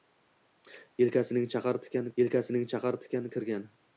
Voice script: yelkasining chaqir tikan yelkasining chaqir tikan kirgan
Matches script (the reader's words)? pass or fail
pass